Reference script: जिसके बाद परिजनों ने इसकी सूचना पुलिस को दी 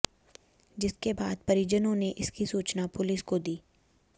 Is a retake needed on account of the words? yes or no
no